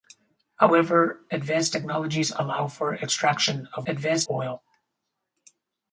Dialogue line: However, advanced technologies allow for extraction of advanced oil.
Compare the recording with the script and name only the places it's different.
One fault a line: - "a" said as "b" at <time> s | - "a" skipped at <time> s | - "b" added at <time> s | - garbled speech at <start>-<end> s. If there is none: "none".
none